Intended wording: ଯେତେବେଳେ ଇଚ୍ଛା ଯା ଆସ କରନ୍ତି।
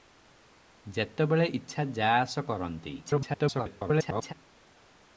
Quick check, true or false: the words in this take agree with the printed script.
false